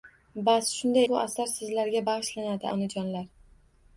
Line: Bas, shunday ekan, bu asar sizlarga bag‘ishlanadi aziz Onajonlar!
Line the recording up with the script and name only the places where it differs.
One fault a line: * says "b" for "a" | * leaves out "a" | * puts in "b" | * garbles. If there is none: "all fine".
* leaves out "ekan"
* leaves out "aziz"